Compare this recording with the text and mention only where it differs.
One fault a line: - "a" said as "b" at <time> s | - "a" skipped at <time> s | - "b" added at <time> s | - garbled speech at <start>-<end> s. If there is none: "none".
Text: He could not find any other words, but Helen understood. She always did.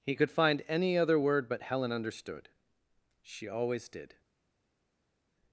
- "not" skipped at 0.3 s
- "words" said as "word" at 1.2 s